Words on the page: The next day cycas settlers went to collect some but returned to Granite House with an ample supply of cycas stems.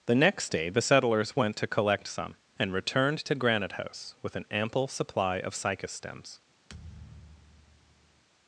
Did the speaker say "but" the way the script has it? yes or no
no